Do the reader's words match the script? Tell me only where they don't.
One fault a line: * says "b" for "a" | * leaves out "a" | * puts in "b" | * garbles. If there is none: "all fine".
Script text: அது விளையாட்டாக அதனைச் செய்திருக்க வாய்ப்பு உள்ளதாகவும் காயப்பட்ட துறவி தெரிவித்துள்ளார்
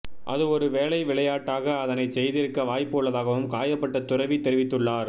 * puts in "ஒரு வேளை"